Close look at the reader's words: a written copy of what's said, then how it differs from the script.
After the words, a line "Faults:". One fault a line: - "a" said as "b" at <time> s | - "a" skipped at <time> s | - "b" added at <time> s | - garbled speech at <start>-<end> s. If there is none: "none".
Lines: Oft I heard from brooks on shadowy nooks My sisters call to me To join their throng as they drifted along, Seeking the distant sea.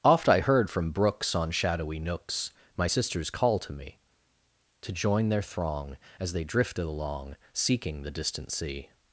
Oft I heard from brooks on shadowy nooks My sisters call to me To join their throng as they drifted along, Seeking the distant sea.
Faults:
none